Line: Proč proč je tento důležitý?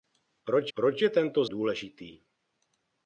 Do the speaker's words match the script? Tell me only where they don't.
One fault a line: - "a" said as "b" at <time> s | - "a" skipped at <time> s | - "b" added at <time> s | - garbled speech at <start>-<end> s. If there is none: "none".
none